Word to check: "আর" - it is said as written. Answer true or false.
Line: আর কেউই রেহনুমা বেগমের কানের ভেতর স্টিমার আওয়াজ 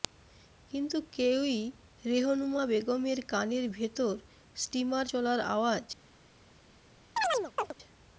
false